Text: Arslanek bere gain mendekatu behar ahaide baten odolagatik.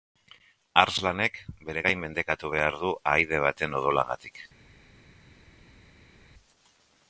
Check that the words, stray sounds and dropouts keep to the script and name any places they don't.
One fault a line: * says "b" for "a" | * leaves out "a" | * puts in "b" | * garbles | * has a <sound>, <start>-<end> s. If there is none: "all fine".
* puts in "du"